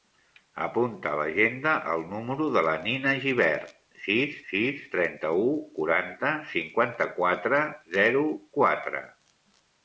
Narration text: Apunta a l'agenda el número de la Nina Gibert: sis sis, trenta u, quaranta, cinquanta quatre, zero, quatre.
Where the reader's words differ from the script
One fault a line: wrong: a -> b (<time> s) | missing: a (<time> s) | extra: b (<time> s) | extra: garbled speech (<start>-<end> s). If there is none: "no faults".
no faults